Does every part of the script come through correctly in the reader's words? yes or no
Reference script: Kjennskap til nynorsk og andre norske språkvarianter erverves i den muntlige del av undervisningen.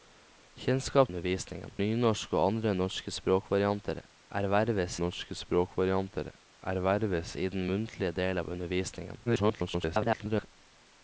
no